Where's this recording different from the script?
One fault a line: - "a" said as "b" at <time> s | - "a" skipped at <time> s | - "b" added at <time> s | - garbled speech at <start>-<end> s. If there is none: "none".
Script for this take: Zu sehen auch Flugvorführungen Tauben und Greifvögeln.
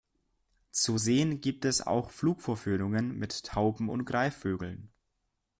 - "gibt es" added at 1.4 s
- "mit" added at 3.2 s